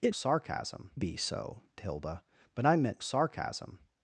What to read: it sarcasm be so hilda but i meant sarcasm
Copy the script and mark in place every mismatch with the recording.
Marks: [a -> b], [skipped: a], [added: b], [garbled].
it sarcasm be so hilda but i meant sarcasm